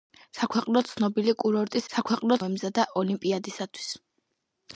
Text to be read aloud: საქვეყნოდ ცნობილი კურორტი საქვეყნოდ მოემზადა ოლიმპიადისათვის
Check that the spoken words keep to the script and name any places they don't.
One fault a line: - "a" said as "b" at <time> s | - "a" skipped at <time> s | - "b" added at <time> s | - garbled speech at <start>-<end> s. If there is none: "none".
none